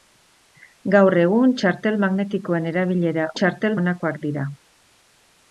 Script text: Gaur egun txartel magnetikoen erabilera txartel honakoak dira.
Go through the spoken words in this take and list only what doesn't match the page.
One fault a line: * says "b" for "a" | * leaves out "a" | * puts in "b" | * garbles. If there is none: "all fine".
all fine